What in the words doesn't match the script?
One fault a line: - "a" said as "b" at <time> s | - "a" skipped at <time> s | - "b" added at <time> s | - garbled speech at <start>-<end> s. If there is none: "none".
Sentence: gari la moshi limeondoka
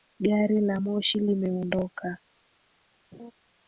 none